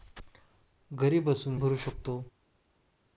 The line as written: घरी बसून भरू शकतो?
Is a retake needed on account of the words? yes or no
no